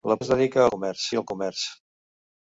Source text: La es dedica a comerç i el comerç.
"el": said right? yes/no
yes